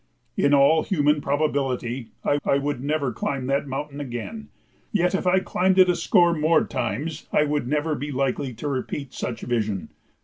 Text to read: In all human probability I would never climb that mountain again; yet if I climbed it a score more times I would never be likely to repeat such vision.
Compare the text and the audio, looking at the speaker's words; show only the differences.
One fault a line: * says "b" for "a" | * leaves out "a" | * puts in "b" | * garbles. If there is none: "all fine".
* puts in "I"